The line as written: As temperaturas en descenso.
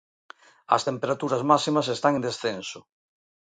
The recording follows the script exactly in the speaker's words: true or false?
false